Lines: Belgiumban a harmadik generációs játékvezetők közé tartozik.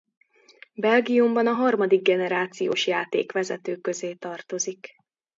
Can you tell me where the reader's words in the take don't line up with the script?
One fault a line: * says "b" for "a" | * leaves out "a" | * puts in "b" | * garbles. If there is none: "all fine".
all fine